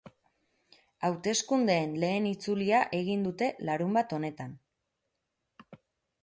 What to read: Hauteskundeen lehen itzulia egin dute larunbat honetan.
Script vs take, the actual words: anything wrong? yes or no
no